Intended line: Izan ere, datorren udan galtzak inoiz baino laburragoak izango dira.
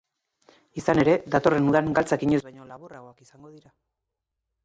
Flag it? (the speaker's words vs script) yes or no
no